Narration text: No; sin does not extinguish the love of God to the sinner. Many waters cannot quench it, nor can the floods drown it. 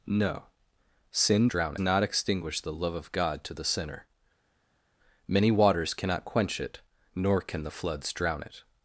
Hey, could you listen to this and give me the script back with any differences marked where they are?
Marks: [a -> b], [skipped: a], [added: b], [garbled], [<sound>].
No; sin [does -> drown] not extinguish the love of God to the sinner. Many waters cannot quench it, nor can the floods drown it.